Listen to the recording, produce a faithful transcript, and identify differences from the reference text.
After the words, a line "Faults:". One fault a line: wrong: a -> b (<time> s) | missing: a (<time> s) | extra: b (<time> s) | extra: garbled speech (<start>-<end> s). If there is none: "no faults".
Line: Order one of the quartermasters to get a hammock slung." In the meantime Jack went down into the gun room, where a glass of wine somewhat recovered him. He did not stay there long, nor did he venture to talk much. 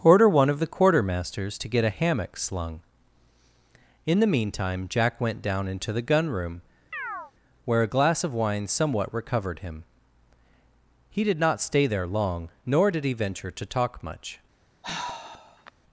Order one of the quartermasters to get a hammock slung." In the meantime Jack went down into the gun room, where a glass of wine somewhat recovered him. He did not stay there long, nor did he venture to talk much.
Faults:
no faults